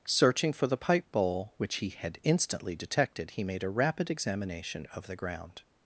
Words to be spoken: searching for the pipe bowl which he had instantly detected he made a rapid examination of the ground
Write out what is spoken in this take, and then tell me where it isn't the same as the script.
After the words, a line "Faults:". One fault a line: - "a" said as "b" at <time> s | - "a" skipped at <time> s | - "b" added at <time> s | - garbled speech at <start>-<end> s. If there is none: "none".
searching for the pipe bowl which he had instantly detected he made a rapid examination of the ground
Faults:
none